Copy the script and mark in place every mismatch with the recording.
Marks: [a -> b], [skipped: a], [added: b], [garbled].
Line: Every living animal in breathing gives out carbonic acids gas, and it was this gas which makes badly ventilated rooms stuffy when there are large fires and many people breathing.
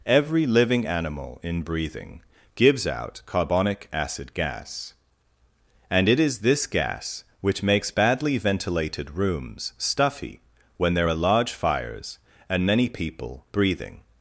Every living animal in breathing gives out carbonic [acids -> acid] gas, and it [was -> is] this gas which makes badly ventilated rooms stuffy when there are large fires and many people breathing.